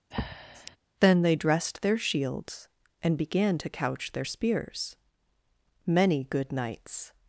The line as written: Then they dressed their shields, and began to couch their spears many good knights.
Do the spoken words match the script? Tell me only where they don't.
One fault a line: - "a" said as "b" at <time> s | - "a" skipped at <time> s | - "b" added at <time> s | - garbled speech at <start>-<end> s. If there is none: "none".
none